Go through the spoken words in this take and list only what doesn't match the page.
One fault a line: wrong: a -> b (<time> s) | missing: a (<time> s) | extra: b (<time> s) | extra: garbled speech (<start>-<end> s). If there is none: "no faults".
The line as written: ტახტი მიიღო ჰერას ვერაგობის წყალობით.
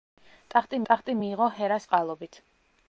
extra: ტახტი (0.9 s)
missing: ვერაგობის (1.9 s)